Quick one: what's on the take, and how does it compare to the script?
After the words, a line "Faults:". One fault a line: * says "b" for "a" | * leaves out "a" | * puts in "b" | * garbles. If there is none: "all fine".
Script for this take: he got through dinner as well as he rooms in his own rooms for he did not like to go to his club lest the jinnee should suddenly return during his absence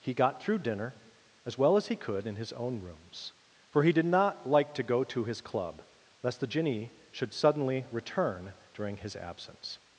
he got through dinner as well as he could in his own rooms for he did not like to go to his club lest the jinnee should suddenly return during his absence
Faults:
* says "could" for "rooms"